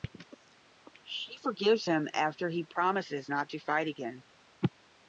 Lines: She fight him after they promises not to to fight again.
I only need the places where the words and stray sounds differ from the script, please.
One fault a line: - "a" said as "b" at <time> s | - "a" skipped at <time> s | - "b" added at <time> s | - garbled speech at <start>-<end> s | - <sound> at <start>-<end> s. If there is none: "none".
- "fight" said as "forgives" at 1.4 s
- "they" said as "he" at 2.5 s
- "to" skipped at 3.6 s